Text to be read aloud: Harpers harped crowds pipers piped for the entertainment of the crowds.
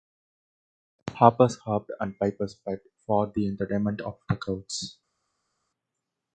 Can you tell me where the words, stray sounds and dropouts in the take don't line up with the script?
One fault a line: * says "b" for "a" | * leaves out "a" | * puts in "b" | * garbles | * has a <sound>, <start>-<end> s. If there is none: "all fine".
* says "and" for "crowds"